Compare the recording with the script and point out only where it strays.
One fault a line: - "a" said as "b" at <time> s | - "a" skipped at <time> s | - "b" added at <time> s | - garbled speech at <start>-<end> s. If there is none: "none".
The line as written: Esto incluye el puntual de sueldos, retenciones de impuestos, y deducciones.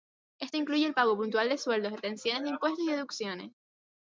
- "pago" added at 0.9 s